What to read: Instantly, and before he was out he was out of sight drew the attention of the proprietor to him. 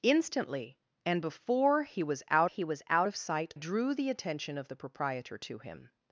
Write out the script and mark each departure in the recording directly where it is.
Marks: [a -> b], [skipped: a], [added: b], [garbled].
Instantly, and before he was out he was out of sight drew the attention of the proprietor to him.